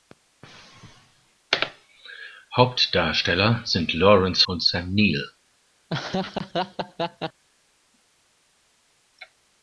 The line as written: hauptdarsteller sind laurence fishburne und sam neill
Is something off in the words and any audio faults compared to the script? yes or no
yes